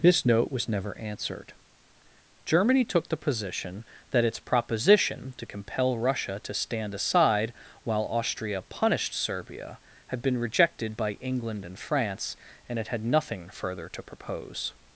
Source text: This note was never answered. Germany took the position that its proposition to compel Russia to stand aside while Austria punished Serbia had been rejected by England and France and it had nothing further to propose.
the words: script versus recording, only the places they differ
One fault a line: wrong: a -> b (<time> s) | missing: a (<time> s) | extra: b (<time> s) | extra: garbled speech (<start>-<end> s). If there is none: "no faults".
no faults